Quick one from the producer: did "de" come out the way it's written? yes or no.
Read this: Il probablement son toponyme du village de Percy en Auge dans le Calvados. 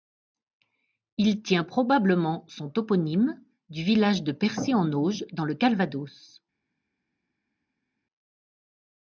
yes